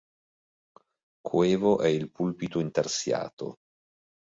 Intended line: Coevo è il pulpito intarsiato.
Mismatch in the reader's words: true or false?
false